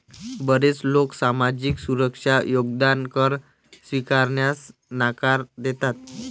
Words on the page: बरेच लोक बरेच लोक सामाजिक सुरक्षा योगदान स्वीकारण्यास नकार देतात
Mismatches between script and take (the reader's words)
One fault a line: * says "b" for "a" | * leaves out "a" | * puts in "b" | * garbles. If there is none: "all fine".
* leaves out "बरेच लोक"
* puts in "कर"